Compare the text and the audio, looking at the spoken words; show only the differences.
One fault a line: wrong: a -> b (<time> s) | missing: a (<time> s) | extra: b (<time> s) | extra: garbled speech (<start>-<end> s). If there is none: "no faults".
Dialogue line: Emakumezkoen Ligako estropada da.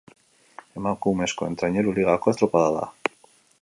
extra: Traineru (1.6 s)